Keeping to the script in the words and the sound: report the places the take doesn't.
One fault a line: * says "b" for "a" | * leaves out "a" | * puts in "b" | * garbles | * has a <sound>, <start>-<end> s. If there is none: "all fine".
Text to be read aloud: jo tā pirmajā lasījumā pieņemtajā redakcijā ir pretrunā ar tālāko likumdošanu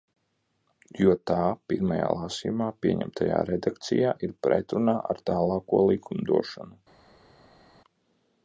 all fine